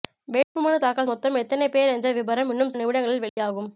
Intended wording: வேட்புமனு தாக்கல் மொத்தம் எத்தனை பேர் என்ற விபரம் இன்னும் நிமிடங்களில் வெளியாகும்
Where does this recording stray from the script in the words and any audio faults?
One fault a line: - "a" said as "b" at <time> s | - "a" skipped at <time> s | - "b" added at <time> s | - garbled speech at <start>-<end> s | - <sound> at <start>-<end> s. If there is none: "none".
- dropout at 0.4-0.6 s
- dropout at 3.3-3.4 s